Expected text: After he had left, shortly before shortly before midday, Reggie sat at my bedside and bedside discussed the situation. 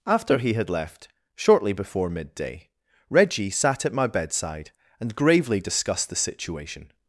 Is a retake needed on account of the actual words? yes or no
yes